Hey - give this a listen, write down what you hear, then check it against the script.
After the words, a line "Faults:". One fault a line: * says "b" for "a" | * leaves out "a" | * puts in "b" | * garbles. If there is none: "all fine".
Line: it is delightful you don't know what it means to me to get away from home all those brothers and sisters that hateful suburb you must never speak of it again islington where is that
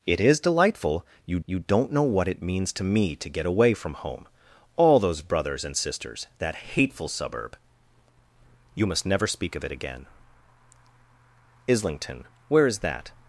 it is delightful you you don't know what it means to me to get away from home all those brothers and sisters that hateful suburb you must never speak of it again islington where is that
Faults:
* puts in "you"